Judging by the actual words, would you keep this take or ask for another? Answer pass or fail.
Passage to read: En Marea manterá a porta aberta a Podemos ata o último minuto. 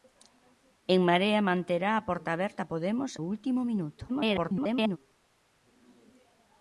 fail